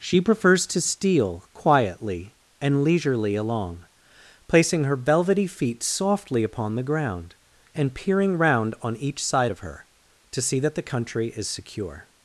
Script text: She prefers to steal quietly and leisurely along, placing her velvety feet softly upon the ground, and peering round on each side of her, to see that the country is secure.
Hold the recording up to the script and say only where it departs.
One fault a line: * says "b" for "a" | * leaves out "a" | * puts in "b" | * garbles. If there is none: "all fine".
all fine